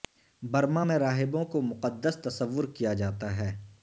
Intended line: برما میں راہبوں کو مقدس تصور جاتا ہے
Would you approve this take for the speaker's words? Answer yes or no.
no